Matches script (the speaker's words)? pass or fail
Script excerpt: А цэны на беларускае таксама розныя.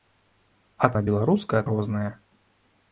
fail